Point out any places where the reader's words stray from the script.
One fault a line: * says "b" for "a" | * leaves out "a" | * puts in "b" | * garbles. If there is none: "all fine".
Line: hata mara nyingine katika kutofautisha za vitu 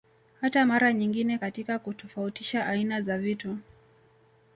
* puts in "aina"